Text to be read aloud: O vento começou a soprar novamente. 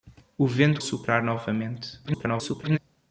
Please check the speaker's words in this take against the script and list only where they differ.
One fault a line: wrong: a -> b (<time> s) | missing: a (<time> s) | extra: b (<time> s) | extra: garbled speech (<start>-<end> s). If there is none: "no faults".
missing: começou (0.8 s)
extra: garbled speech (2.1-2.8 s)